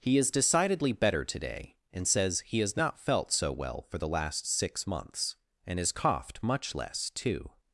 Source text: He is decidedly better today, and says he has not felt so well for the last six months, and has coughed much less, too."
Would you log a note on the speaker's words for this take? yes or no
no